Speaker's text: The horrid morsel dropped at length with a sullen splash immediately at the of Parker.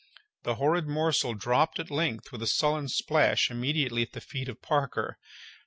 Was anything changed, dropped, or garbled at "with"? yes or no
no